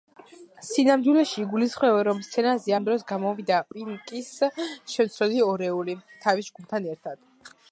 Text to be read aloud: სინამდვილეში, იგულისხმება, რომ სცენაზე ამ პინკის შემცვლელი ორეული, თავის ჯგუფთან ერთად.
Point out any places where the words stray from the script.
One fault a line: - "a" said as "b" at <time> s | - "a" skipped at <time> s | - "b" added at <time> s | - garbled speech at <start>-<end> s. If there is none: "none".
- "დროს გამოვიდა" added at 2.9 s